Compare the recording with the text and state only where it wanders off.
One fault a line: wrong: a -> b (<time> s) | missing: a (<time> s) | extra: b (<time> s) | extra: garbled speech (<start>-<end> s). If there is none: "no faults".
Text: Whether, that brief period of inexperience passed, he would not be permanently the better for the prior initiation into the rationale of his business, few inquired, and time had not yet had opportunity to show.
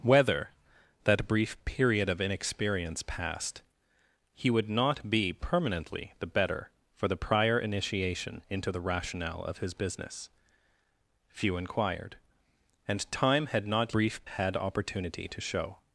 wrong: yet -> brief (13.9 s)